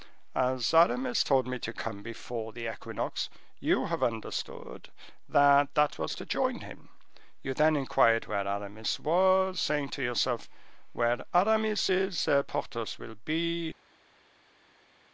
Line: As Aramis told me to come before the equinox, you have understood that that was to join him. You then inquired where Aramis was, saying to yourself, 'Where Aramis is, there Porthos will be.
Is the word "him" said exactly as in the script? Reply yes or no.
yes